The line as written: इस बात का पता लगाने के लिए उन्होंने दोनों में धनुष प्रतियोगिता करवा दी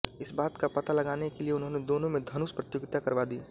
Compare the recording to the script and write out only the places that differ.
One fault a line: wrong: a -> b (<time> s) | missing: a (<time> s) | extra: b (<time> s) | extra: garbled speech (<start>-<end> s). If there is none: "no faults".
no faults